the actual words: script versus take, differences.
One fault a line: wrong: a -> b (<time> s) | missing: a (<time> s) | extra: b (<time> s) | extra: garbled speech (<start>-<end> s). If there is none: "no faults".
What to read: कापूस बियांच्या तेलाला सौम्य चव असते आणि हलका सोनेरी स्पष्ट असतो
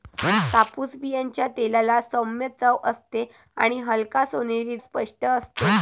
no faults